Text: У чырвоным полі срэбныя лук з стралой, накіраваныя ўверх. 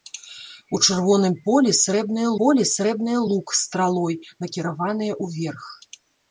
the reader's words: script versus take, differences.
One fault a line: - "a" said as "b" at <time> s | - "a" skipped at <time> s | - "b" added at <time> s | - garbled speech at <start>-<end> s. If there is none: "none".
- "полі срэбныя" added at 2.4 s